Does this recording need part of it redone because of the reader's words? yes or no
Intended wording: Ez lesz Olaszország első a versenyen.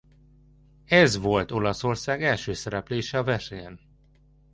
yes